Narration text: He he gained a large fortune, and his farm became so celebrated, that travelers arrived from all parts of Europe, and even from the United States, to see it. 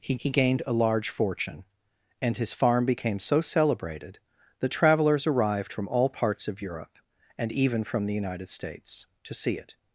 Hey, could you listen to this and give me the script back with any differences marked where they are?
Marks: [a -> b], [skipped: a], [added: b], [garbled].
He he gained a large fortune, and his farm became so celebrated, that travelers arrived from all parts of Europe, and even from the United States, to see it.